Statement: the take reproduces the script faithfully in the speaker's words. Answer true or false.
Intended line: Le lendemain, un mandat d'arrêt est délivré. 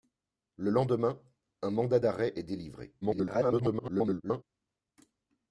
false